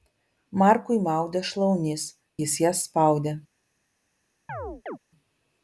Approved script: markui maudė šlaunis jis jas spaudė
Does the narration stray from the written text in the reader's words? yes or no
no